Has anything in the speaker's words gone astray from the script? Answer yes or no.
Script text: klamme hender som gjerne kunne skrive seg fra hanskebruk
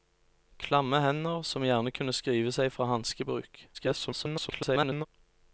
yes